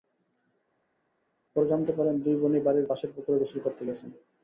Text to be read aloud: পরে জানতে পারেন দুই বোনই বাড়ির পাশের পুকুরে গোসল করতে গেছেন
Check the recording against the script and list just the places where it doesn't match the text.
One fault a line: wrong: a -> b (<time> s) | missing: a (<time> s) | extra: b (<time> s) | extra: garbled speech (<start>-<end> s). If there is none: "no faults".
no faults